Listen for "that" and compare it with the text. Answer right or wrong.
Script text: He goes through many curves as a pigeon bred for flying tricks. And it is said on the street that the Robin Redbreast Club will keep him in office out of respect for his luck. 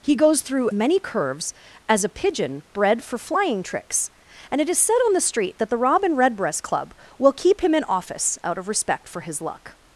right